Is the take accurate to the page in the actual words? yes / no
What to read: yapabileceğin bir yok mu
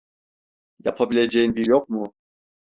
yes